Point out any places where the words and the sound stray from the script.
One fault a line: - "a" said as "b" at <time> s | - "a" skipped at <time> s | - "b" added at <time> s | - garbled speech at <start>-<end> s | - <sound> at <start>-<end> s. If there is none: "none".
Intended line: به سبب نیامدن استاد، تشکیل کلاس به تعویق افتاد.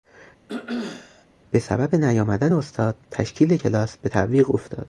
- throat clearing at 0.5-1.3 s